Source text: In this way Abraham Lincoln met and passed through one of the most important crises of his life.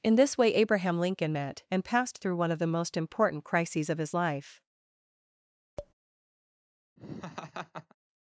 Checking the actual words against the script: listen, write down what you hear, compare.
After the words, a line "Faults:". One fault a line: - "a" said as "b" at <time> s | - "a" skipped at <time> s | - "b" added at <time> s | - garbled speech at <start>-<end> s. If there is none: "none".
In this way Abraham Lincoln met and passed through one of the most important crises of his life.
Faults:
none